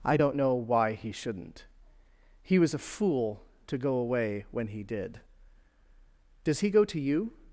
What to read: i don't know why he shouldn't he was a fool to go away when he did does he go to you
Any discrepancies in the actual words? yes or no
no